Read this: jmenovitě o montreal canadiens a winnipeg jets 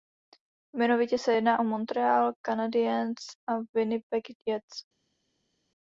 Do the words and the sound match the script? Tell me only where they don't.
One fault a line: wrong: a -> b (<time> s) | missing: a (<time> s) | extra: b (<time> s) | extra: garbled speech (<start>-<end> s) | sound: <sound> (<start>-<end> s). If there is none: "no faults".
extra: se jedná (1.2 s)